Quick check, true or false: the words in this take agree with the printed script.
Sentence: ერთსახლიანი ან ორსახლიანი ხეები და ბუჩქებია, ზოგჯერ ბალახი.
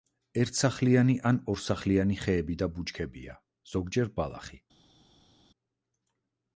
true